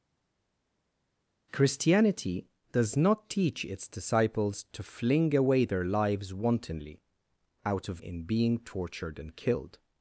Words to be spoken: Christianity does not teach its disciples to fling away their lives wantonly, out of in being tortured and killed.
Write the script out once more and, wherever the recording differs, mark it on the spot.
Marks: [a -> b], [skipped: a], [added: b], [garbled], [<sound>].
Christianity does not teach its disciples to fling away their lives wantonly, out of in being tortured and killed.